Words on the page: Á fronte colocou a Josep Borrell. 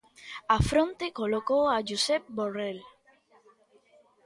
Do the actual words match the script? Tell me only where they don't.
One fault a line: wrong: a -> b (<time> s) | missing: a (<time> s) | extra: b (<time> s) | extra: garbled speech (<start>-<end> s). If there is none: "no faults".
no faults